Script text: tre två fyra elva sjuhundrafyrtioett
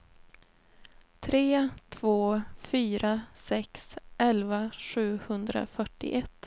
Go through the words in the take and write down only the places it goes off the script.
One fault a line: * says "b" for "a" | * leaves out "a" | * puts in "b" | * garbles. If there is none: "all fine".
* puts in "sex"